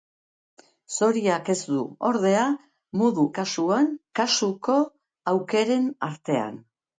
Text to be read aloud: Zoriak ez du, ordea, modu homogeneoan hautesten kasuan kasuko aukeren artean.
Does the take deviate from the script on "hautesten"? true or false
true